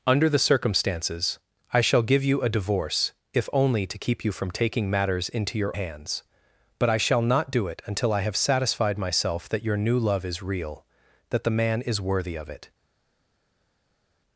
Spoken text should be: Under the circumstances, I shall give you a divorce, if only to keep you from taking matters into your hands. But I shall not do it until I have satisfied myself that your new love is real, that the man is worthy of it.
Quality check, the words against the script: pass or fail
pass